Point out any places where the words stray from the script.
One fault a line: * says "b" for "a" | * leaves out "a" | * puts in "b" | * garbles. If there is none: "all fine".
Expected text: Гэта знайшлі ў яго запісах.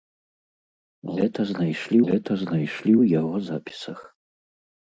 * puts in "гэта знайшлі"